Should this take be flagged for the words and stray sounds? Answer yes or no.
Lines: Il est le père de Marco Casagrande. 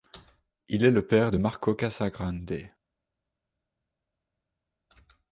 no